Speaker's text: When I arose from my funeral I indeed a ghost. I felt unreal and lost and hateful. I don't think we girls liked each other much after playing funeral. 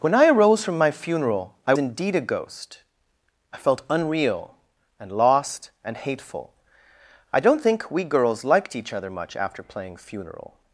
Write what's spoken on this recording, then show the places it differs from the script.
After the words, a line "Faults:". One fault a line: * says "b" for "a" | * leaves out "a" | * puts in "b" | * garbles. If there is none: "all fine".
When I arose from my funeral I indeed a ghost. I felt unreal and lost and hateful. I don't think we girls liked each other much after playing funeral.
Faults:
all fine